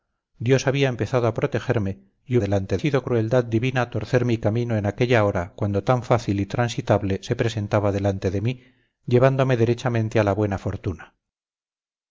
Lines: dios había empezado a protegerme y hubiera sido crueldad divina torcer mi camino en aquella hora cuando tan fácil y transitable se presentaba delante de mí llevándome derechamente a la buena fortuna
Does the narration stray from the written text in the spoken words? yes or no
yes